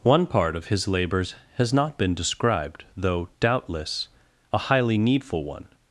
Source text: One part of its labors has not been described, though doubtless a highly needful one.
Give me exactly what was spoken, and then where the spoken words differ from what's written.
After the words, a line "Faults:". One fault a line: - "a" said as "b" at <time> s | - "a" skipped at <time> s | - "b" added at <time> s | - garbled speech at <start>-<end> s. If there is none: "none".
One part of his labors has not been described, though doubtless a highly needful one.
Faults:
- "its" said as "his" at 0.7 s